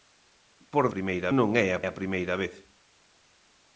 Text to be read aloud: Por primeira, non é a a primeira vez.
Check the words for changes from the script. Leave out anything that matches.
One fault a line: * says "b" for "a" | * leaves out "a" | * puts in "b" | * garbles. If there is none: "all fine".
all fine